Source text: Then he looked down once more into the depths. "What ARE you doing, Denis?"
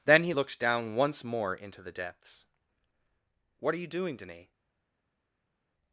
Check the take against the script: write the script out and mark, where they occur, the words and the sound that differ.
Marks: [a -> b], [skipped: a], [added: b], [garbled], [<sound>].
Then he looked down once more into the depths. "What ARE you doing, Denis?"